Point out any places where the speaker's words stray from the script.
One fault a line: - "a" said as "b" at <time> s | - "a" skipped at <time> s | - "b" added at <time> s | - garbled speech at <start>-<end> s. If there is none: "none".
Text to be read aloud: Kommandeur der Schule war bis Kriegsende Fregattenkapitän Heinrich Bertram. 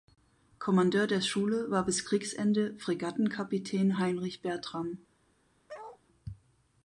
none